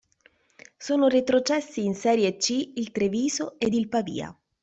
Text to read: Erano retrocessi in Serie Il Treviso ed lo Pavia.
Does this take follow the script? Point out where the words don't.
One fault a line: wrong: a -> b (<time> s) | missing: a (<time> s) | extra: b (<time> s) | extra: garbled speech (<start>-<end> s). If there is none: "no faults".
wrong: Erano -> Sono (0.8 s)
extra: C (2.4 s)
wrong: lo -> il (3.7 s)